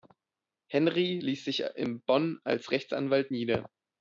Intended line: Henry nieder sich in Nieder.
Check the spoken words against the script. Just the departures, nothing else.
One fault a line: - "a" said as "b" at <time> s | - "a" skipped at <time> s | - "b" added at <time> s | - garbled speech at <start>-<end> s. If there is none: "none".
- "nieder" said as "ließ" at 1.2 s
- "Bonn als Rechtsanwalt" added at 2.0 s